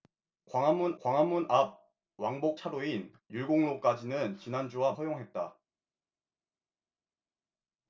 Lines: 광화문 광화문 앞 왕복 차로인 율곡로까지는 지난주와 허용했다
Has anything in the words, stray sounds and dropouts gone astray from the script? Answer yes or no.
no